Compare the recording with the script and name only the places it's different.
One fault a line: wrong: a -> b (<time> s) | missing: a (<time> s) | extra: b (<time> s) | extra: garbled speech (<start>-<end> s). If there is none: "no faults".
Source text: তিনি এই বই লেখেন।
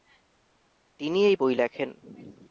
no faults